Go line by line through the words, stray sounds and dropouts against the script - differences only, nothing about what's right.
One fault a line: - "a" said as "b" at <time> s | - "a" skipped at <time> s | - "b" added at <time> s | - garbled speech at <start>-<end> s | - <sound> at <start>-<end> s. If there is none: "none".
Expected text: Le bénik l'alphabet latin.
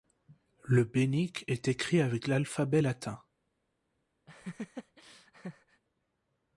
- "est écrit avec" added at 1.5 s
- laugh at 4.3-5.8 s